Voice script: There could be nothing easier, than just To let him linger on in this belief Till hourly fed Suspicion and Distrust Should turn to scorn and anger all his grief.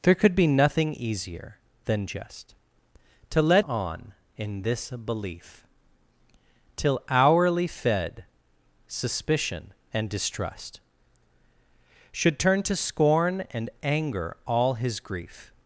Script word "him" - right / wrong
wrong